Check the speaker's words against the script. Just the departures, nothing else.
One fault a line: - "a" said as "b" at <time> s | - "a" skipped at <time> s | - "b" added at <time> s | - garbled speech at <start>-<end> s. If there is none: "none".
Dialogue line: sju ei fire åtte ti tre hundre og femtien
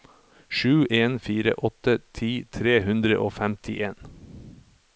- "ei" said as "en" at 0.9 s